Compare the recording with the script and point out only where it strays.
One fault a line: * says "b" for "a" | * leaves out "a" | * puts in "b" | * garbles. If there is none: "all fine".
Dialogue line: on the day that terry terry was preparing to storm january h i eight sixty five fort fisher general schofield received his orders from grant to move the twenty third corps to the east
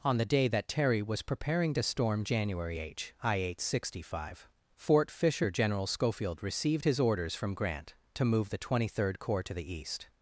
* leaves out "terry"